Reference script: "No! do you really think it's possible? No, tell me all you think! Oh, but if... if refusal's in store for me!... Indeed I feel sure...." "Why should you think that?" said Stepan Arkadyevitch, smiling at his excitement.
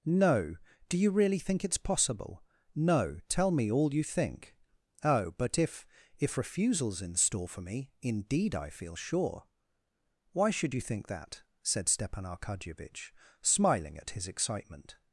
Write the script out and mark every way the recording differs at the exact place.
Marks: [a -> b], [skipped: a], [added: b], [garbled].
"No! do you really think it's possible? No, tell me all you think! Oh, but if... if refusal's in store for me!... Indeed I feel sure...." "Why should you think that?" said Stepan Arkadyevitch, smiling at his excitement.